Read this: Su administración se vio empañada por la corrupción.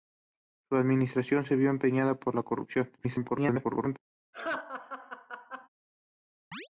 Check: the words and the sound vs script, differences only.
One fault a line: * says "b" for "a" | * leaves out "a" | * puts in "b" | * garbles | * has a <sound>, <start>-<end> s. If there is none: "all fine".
* garbles
* has a laugh, 4.3-5.7 s
* has a chirp, 6.5-6.7 s